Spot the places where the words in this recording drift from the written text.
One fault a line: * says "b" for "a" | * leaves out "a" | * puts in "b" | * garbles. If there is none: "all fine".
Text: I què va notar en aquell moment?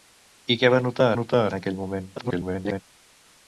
* puts in "notar"
* garbles